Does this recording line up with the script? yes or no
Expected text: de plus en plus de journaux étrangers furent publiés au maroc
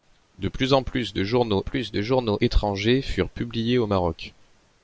no